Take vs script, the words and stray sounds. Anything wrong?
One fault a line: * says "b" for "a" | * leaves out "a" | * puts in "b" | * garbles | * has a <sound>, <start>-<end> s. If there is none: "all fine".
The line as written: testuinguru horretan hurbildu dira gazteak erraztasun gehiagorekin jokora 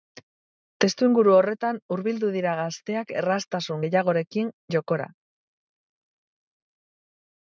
all fine